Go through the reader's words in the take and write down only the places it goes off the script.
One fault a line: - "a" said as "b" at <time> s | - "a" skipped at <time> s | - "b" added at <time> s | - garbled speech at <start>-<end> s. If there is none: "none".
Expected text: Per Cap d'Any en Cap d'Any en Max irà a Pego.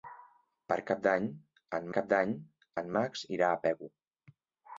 none